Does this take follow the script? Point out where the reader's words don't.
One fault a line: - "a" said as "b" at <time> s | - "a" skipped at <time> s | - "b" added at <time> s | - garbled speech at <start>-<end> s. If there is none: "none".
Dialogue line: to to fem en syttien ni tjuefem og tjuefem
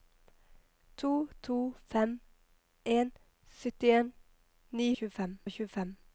none